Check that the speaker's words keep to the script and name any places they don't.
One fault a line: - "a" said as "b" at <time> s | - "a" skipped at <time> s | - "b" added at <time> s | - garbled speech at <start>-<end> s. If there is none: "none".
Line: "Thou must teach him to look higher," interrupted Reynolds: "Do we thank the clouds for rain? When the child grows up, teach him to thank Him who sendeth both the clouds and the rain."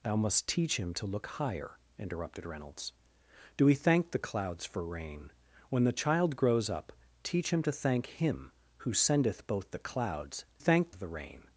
- "and" said as "thank" at 10.6 s